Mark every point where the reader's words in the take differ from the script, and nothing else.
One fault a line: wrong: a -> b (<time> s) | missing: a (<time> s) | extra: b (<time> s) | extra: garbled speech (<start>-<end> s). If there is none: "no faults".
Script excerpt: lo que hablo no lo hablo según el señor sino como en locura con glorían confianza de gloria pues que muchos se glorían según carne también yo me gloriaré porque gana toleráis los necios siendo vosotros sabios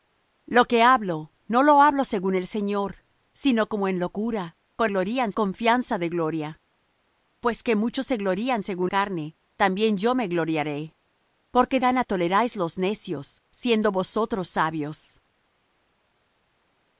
no faults